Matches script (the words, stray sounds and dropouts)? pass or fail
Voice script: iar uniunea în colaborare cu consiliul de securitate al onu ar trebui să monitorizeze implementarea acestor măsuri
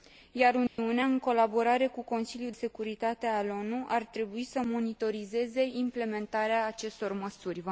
fail